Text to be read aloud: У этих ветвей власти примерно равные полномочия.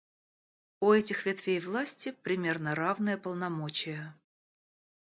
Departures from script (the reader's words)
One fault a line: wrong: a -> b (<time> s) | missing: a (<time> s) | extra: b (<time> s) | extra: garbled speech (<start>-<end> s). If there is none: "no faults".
no faults